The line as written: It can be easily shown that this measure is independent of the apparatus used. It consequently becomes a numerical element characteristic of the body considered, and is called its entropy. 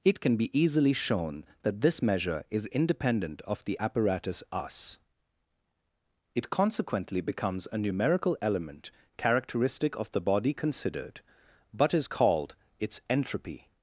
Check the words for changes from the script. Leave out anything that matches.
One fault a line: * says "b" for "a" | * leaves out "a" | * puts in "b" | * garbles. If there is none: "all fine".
* says "us" for "used"
* says "but" for "and"